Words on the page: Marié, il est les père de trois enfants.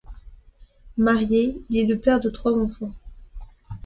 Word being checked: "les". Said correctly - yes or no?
no